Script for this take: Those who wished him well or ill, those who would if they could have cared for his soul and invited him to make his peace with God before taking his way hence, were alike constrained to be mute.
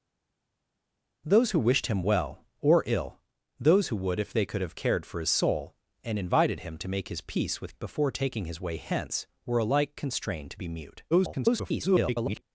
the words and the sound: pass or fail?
fail